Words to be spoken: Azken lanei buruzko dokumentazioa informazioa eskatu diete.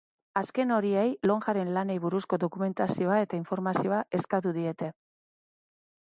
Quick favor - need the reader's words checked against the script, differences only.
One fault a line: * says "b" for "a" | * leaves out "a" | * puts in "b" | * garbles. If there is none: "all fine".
* puts in "horiei lonjaren"
* puts in "eta"